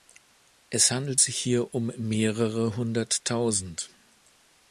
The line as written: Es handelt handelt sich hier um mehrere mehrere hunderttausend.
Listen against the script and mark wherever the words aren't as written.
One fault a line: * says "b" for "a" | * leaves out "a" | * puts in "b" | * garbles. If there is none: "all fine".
* leaves out "handelt"
* leaves out "mehrere"